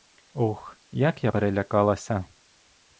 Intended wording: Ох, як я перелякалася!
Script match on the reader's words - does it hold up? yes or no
yes